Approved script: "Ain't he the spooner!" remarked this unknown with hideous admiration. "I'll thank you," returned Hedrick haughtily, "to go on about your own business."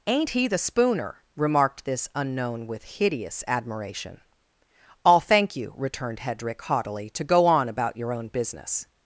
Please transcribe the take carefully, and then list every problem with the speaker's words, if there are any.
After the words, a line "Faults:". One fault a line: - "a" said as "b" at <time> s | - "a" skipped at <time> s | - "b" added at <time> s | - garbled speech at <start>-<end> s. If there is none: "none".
"Ain't he the spooner!" remarked this unknown with hideous admiration. "I'll thank you," returned Hedrick haughtily, "to go on about your own business."
Faults:
none